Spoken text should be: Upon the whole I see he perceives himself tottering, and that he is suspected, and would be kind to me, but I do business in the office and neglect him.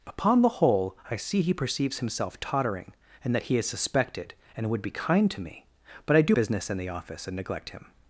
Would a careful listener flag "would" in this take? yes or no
no